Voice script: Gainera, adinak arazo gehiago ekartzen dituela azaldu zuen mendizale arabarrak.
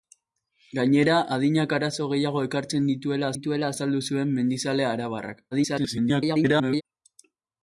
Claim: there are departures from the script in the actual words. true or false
true